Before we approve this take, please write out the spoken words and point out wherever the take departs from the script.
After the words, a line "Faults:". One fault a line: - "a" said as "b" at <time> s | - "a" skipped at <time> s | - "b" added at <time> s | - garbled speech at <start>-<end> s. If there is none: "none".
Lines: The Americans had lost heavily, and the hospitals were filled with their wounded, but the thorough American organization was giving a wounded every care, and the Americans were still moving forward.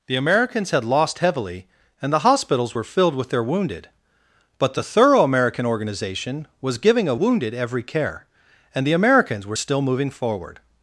The Americans had lost heavily, and the hospitals were filled with their wounded, but the thorough American organization was giving a wounded every care, and the Americans were still moving forward.
Faults:
none